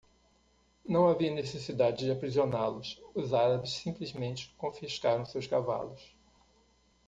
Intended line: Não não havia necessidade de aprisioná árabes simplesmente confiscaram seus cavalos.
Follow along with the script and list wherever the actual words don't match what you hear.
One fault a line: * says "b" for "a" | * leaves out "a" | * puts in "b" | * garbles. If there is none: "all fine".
* leaves out "não"
* puts in "los Os"